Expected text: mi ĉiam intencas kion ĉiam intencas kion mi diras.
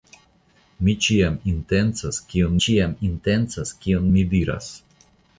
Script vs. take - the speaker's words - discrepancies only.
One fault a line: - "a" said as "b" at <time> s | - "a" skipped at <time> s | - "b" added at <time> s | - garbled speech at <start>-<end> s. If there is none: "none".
none